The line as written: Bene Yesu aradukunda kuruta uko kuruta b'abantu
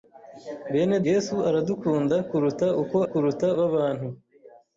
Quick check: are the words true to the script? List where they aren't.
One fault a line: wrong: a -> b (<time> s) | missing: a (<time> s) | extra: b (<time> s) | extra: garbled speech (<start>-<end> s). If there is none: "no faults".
no faults